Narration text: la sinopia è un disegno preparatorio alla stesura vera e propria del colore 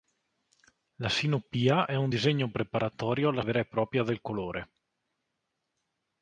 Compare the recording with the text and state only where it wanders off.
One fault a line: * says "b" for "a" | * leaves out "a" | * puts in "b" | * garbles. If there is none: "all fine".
* leaves out "stesura"